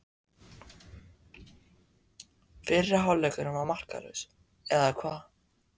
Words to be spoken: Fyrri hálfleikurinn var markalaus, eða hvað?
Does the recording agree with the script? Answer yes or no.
yes